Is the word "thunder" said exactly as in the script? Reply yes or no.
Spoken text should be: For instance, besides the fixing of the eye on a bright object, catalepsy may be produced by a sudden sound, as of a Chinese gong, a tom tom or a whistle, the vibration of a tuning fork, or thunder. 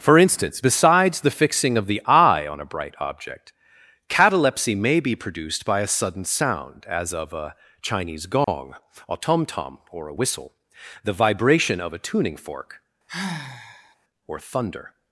yes